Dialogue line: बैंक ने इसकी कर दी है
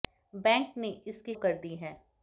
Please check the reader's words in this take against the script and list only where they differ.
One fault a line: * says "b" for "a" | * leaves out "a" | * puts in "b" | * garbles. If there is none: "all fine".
all fine